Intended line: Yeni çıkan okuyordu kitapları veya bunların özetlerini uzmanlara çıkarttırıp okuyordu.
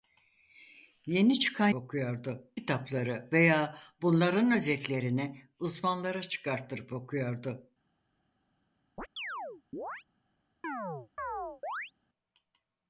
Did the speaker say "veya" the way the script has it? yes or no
yes